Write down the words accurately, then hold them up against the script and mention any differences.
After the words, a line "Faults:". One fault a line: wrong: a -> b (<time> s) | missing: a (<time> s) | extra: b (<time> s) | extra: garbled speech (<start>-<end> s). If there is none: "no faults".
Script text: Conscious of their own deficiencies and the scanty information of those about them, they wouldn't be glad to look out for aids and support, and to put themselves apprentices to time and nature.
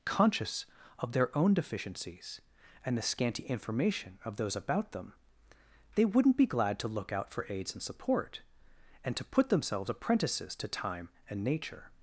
Conscious of their own deficiencies and the scanty information of those about them, they wouldn't be glad to look out for aids and support, and to put themselves apprentices to time and nature.
Faults:
no faults